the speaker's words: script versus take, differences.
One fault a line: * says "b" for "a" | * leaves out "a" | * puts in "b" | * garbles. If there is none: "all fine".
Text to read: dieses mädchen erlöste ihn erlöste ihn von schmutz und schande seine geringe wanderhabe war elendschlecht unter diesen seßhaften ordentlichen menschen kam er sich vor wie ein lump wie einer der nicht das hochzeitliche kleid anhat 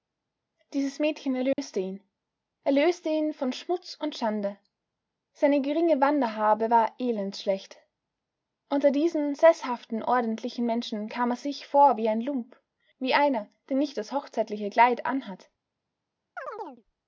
all fine